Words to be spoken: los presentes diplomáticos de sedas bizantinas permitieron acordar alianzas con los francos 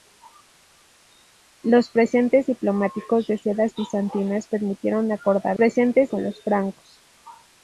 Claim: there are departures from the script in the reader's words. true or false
true